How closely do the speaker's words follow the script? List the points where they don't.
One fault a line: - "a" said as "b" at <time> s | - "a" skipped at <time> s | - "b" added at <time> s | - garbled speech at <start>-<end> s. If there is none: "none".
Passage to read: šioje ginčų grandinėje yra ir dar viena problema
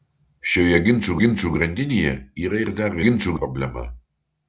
- "ginčų" added at 1.2 s
- "viena" said as "ginčų" at 3.0 s